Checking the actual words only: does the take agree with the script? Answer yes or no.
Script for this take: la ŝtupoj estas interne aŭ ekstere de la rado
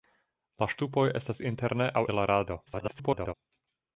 no